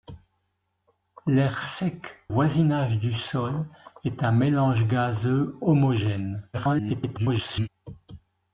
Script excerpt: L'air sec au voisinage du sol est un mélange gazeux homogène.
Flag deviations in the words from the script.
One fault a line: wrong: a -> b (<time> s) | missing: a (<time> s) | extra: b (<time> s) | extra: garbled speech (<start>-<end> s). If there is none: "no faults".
missing: au (2.1 s)
extra: garbled speech (6.5-7.7 s)